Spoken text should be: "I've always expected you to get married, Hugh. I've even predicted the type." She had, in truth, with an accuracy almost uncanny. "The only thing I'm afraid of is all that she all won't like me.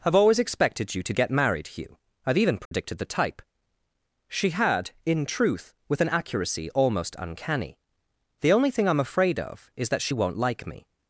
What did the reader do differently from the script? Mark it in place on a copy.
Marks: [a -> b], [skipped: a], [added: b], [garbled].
"I've always expected you to get married, Hugh. I've even predicted the type." She had, in truth, with an accuracy almost uncanny. "The only thing I'm afraid of is [skipped: all] that she [skipped: all] won't like me.